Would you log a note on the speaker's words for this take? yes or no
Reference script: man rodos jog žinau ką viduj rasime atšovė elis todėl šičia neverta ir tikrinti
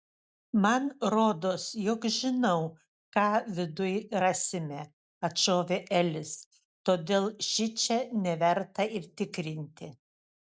no